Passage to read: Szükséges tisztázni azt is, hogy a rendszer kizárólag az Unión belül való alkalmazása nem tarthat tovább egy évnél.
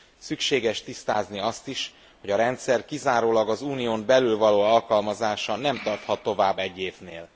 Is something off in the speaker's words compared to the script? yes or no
no